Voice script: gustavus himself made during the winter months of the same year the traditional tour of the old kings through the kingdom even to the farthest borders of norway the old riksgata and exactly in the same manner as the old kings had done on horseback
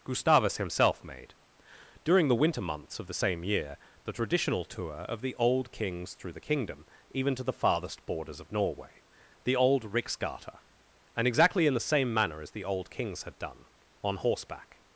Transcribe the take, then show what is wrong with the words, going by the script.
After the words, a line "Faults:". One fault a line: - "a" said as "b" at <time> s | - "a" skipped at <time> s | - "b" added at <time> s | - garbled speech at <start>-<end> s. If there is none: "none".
gustavus himself made during the winter months of the same year the traditional tour of the old kings through the kingdom even to the farthest borders of norway the old riksgata and exactly in the same manner as the old kings had done on horseback
Faults:
none